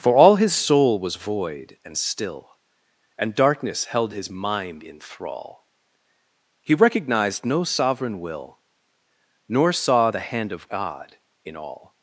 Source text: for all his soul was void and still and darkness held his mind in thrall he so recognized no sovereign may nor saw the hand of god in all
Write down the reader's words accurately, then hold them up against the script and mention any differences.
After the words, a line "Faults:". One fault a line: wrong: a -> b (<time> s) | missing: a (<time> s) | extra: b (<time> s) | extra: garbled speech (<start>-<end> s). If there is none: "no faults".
for all his soul was void and still and darkness held his mind in thrall he recognized no sovereign will nor saw the hand of god in all
Faults:
missing: so (6.7 s)
wrong: may -> will (8.2 s)